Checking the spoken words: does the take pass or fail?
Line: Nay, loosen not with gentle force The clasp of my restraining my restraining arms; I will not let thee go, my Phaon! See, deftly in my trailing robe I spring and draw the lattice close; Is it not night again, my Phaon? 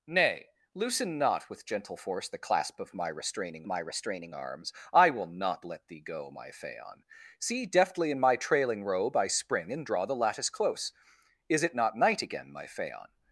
pass